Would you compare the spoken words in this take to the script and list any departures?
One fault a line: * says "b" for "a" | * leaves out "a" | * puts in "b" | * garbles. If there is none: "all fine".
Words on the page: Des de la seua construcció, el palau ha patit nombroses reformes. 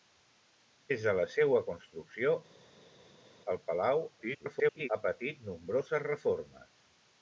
* garbles